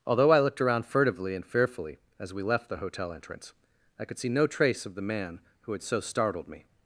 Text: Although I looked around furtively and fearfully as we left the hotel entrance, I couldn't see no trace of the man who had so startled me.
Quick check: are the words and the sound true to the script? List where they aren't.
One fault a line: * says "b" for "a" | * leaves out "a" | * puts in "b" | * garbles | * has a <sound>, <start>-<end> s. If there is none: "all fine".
* says "could" for "couldn't"